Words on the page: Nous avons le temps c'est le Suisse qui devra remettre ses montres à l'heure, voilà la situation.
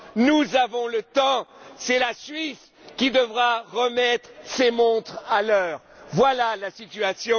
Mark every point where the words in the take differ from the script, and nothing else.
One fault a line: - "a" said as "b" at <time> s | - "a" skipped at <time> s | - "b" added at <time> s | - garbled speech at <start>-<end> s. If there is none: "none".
- "le" said as "la" at 2.0 s